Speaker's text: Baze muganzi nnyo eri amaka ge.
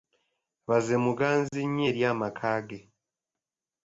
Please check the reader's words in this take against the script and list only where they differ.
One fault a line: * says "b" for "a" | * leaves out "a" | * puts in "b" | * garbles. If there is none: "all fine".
all fine